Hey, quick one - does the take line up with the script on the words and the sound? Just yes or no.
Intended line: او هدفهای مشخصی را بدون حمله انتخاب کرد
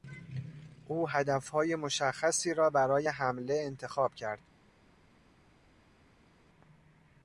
no